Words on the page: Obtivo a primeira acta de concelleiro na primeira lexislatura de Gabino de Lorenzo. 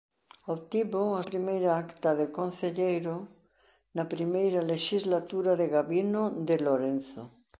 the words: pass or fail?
pass